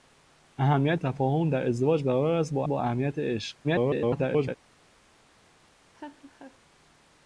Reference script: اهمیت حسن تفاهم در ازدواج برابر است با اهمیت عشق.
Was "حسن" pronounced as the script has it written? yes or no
no